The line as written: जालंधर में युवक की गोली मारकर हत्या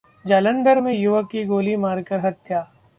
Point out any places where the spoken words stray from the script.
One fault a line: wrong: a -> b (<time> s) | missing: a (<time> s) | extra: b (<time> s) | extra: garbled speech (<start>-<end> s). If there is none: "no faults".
no faults